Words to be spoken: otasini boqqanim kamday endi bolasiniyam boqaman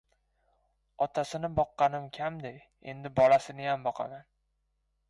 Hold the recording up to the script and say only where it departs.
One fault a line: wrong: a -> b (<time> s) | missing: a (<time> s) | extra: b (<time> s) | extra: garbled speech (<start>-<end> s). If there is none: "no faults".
no faults